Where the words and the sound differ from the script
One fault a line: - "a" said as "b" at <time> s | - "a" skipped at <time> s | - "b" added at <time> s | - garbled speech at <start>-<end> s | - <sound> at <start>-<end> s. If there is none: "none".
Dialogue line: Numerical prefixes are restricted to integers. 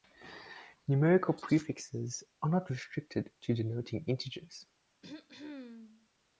- "not" added at 2.5 s
- "denoting" added at 3.5 s
- throat clearing at 5.0-6.1 s